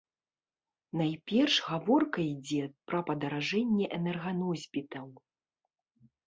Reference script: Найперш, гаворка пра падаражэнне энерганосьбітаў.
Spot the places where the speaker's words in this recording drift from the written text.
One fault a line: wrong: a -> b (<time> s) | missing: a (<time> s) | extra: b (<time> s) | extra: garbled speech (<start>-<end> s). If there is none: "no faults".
extra: ідзе (2.3 s)